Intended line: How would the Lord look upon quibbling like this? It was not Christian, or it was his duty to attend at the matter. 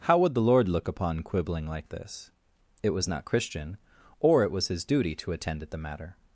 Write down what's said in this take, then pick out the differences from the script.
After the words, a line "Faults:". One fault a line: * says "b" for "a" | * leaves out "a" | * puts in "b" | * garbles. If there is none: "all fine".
How would the Lord look upon quibbling like this? It was not Christian, or it was his duty to attend at the matter.
Faults:
all fine